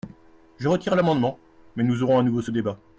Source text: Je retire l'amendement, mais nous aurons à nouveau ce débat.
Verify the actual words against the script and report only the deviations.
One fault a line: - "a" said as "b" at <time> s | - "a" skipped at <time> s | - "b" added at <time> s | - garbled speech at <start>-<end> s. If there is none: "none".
none